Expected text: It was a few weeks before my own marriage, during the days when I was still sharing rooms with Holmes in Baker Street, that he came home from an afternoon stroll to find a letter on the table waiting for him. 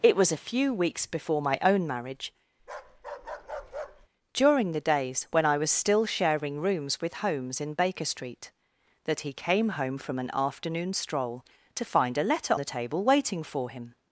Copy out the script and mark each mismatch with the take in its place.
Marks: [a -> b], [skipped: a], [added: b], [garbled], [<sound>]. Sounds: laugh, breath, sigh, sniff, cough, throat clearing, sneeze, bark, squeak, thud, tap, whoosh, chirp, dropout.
It was a few weeks before my own marriage, [bark] during the days when I was still sharing rooms with Holmes in Baker Street, that he came home from an afternoon stroll to find a letter [skipped: on] the table waiting for him.